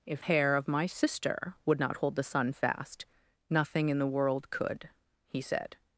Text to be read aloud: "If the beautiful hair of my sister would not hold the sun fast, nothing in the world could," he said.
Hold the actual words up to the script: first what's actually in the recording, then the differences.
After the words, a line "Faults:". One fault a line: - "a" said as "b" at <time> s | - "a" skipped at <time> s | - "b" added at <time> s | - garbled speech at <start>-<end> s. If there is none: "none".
"If hair of my sister would not hold the sun fast, nothing in the world could," he said.
Faults:
- "the beautiful" skipped at 0.2 s